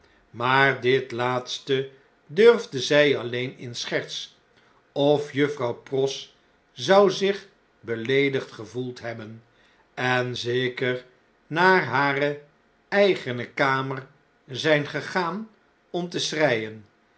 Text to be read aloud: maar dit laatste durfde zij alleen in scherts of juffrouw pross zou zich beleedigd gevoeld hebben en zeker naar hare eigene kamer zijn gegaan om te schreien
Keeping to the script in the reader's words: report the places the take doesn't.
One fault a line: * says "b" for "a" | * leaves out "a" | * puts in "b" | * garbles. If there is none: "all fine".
all fine